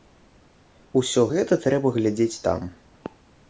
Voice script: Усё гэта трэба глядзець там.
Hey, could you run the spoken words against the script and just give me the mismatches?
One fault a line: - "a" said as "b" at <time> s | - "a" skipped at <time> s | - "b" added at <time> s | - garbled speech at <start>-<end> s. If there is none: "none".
none